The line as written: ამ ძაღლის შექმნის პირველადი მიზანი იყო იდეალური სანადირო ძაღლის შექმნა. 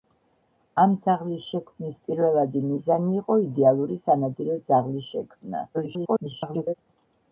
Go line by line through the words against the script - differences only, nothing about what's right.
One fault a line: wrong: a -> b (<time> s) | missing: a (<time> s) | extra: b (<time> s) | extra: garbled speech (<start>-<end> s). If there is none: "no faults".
extra: garbled speech (5.7-6.7 s)